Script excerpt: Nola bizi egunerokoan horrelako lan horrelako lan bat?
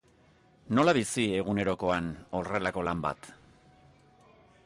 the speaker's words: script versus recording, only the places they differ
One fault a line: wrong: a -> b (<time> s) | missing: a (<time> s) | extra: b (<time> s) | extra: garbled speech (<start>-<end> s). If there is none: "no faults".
missing: horrelako lan (3.0 s)